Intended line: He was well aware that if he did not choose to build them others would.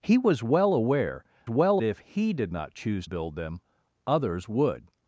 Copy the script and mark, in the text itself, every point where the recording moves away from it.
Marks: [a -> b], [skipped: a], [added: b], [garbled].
He was well aware [that -> well] if he did not choose [skipped: to] build them others would.